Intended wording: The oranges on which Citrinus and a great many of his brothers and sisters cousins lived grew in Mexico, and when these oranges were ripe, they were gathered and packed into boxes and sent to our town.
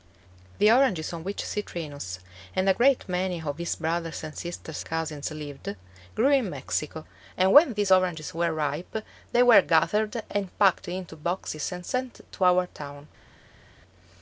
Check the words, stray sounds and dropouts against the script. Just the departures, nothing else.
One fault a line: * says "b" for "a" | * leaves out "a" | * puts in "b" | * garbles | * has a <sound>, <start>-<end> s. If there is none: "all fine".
all fine